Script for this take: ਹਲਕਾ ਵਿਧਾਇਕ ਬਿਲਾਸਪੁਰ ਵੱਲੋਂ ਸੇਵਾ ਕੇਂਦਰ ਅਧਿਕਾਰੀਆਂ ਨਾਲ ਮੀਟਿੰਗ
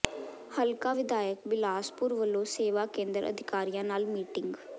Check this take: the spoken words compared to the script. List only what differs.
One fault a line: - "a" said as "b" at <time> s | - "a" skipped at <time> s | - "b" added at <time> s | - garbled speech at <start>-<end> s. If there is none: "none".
none